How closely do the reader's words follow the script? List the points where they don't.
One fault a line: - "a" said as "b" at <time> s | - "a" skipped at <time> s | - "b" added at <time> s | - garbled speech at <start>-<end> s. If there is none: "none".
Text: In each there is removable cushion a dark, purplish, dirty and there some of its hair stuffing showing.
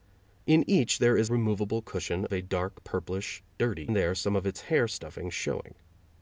none